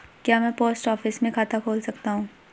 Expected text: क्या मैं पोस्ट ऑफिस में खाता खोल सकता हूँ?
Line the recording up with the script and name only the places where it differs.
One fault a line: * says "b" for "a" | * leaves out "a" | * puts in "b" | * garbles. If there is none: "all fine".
all fine